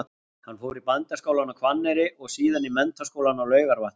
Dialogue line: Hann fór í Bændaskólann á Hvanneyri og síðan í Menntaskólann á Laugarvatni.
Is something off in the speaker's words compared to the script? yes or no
no